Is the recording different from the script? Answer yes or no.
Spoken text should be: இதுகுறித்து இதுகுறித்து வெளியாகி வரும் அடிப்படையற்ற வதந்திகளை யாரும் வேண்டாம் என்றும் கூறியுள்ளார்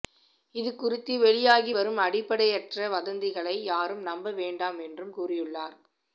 yes